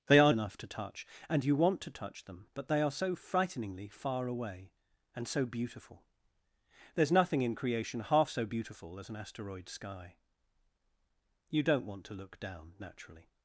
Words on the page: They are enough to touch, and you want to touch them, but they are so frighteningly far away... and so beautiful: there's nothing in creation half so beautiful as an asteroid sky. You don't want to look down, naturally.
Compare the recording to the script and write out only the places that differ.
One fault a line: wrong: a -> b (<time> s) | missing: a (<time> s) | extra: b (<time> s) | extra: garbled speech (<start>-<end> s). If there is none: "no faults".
no faults